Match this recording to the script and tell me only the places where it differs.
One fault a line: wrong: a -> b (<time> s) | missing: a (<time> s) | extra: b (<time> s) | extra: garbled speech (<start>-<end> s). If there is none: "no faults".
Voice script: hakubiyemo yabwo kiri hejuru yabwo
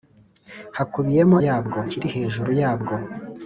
no faults